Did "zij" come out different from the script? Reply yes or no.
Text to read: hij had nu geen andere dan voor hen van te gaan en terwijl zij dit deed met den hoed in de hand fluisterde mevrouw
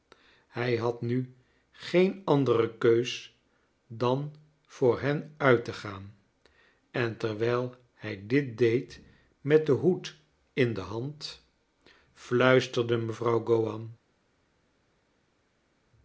yes